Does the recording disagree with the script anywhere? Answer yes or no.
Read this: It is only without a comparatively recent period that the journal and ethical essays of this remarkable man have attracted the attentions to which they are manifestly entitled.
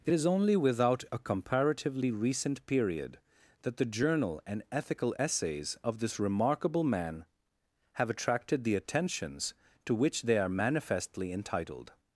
no